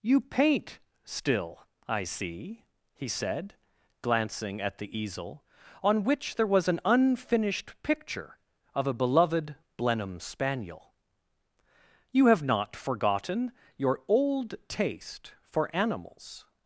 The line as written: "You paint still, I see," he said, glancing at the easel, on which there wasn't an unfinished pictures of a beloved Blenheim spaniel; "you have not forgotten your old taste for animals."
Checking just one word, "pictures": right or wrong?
wrong